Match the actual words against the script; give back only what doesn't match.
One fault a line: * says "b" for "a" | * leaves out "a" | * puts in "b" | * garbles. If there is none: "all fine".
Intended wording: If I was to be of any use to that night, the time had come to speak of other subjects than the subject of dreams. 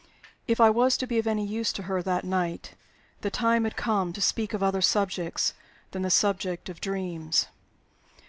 * puts in "her"